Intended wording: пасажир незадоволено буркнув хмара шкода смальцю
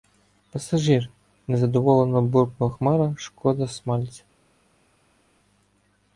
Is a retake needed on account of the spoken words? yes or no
no